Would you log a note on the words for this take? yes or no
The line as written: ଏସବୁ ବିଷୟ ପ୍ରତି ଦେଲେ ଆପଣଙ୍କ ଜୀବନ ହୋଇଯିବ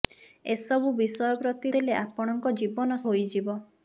no